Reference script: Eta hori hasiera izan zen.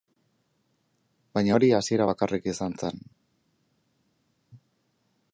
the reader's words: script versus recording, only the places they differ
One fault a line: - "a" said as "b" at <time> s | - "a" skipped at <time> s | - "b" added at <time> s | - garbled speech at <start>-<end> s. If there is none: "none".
- "Eta" said as "Baina" at 1.4 s
- "bakarrik" added at 2.1 s